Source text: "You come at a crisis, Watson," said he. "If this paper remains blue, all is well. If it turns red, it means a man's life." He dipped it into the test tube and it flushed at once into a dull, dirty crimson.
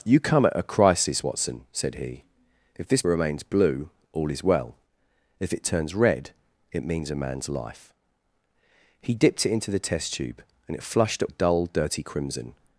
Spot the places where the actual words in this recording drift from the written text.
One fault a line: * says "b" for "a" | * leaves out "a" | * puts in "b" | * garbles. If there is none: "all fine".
* leaves out "paper"
* leaves out "once into"